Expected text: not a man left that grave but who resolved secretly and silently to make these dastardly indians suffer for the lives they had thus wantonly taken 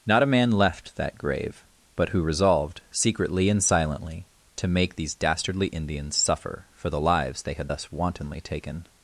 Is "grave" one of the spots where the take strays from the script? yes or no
no